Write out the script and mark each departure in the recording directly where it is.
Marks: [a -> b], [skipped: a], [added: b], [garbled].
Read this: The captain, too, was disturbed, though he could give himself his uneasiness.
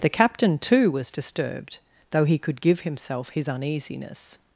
The captain, too, was disturbed, though he could give himself his uneasiness.